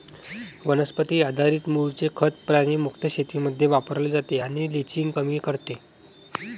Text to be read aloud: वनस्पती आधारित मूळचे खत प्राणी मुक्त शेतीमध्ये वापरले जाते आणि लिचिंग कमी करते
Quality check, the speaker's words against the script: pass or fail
pass